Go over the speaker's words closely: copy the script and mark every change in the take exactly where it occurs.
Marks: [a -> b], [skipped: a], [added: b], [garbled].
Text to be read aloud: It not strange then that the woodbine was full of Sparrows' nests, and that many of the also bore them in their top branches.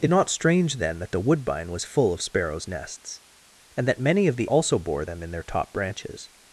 It not strange then that the woodbine was full of Sparrows' nests, and that many of the also bore them in their top branches.